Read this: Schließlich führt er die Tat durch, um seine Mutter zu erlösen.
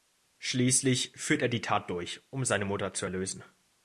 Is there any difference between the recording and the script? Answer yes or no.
no